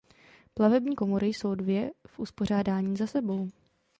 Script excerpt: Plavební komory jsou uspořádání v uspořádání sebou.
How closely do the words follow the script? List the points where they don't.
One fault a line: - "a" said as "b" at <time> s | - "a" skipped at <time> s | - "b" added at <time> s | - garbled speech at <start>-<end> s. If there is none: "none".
- "uspořádání" said as "dvě" at 1.5 s
- "za" added at 3.0 s